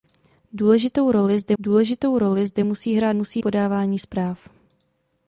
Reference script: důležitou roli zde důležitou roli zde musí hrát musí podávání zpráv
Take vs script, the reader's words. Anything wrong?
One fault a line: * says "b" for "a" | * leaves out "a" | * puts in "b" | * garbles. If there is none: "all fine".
all fine